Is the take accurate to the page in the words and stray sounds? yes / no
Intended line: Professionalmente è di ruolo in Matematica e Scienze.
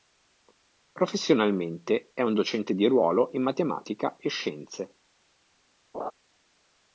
no